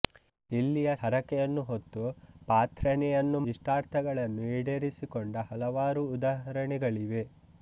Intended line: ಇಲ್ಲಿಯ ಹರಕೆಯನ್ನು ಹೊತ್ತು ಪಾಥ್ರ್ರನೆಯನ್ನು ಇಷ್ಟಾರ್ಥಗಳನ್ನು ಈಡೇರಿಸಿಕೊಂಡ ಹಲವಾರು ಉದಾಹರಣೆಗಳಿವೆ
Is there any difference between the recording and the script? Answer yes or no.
no